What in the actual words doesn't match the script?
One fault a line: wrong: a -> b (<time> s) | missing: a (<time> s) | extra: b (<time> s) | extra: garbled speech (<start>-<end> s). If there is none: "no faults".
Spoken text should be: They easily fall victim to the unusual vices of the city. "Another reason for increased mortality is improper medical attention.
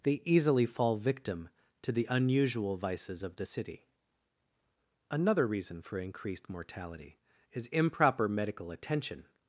no faults